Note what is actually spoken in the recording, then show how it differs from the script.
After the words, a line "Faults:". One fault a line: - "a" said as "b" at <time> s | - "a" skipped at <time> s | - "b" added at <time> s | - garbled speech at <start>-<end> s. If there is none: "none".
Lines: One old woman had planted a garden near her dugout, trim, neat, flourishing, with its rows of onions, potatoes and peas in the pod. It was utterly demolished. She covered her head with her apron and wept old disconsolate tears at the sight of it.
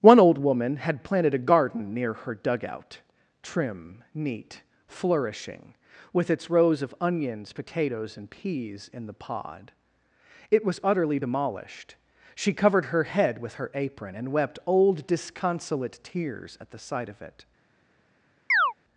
One old woman had planted a garden near her dugout, trim, neat, flourishing, with its rows of onions, potatoes and peas in the pod. It was utterly demolished. She covered her head with her apron and wept old disconsolate tears at the sight of it.
Faults:
none